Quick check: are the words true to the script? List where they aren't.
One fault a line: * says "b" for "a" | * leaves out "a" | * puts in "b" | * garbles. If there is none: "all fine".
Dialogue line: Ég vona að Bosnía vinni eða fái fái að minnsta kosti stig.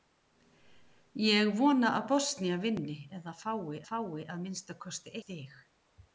all fine